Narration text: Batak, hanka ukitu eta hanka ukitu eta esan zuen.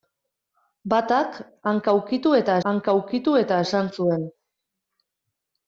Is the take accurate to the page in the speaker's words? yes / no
yes